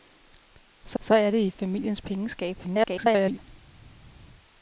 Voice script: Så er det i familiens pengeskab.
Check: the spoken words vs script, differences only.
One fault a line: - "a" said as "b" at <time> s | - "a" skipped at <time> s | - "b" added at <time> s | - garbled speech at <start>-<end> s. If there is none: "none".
- "så" added at 1.0 s
- garbled speech at 2.6-3.4 s